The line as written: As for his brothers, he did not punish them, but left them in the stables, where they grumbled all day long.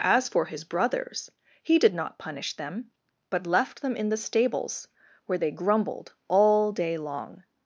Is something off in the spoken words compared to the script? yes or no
no